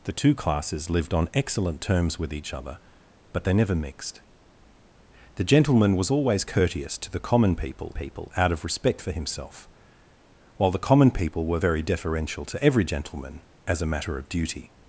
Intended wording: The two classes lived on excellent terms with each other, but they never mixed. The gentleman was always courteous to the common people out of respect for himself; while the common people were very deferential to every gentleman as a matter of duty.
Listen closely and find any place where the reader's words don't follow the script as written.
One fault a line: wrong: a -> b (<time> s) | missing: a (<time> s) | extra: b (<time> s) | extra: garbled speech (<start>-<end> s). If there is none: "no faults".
extra: people (7.9 s)